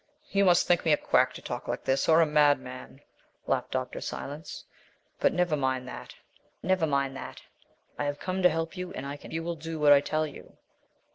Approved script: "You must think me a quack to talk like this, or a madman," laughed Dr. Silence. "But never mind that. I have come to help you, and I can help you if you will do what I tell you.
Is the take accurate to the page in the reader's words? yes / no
no